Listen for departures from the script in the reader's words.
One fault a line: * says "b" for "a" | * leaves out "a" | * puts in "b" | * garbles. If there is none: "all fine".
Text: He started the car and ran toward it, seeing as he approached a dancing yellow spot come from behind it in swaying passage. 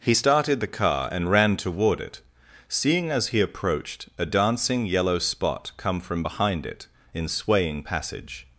all fine